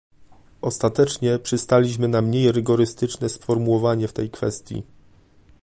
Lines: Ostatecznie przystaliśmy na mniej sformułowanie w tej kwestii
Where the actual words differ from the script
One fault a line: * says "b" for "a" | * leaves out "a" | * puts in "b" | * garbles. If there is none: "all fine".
* puts in "rygorystyczne"